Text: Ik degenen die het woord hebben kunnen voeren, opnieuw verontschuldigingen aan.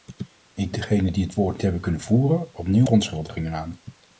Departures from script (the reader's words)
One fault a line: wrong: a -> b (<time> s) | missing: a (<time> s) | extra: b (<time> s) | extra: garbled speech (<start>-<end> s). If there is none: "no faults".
no faults